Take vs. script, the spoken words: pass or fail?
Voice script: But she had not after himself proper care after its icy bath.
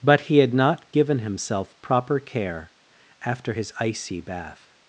fail